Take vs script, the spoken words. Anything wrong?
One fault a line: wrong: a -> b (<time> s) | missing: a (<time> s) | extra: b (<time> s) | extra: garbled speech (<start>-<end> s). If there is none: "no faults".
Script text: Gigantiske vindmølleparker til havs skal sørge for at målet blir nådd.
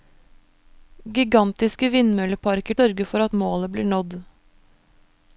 missing: til havs skal (2.8 s)